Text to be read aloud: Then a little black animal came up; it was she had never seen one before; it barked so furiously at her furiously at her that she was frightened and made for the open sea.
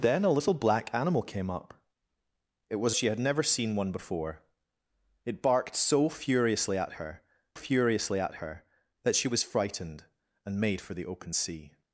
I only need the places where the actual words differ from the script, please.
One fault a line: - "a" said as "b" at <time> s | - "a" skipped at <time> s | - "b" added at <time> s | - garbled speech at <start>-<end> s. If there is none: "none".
none